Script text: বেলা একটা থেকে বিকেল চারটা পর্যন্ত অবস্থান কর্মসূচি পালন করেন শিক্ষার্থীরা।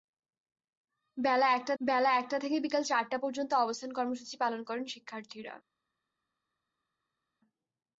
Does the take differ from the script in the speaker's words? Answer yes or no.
yes